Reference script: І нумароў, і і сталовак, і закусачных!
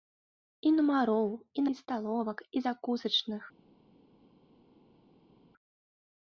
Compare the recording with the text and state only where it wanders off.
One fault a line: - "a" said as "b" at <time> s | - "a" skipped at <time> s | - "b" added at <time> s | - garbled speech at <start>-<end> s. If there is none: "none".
none